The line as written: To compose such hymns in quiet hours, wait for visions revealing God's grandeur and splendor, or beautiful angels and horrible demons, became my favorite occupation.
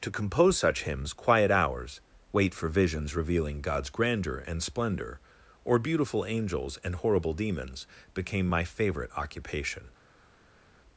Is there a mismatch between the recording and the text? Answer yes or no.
yes